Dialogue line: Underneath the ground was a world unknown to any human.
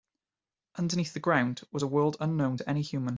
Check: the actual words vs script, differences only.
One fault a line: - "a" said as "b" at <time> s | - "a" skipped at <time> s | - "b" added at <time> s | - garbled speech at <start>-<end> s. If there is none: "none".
none